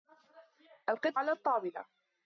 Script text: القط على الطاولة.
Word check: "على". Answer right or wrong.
right